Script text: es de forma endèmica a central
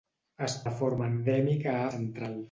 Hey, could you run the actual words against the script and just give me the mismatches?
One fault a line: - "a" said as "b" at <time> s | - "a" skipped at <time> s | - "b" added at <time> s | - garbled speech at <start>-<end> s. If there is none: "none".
none